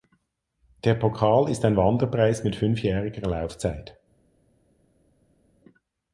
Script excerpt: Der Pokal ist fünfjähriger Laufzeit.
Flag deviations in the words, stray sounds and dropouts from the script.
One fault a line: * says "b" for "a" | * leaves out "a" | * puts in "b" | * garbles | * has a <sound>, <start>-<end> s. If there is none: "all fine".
* puts in "ein Wanderpreis mit"